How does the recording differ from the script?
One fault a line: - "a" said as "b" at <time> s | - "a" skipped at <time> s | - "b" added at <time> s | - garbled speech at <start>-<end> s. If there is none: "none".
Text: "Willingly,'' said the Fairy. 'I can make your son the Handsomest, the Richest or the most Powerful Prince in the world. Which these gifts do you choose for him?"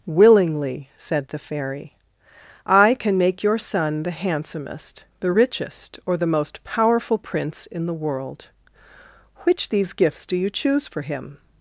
none